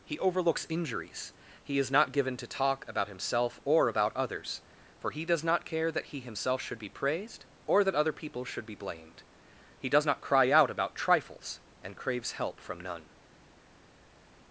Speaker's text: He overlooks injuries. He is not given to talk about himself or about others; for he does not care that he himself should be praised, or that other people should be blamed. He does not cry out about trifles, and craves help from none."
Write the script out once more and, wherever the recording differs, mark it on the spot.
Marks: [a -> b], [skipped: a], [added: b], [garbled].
He overlooks injuries. He is not given to talk about himself or about others; for he does not care that he himself should be praised, or that other people should be blamed. He does not cry out about trifles, and craves help from none."